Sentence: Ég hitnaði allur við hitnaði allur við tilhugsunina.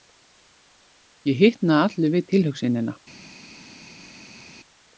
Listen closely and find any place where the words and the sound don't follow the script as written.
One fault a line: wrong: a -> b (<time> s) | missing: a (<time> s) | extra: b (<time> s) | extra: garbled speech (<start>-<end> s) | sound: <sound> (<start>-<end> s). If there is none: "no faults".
missing: hitnaði allur við (2.3 s)